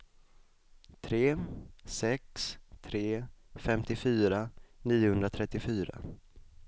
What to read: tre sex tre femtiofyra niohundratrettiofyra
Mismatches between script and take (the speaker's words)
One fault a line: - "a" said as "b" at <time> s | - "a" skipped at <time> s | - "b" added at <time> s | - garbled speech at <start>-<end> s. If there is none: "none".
none